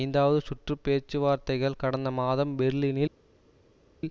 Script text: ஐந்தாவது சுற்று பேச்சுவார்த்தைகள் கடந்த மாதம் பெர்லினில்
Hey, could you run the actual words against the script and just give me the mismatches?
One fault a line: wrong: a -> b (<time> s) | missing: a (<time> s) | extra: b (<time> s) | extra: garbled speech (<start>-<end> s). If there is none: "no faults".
no faults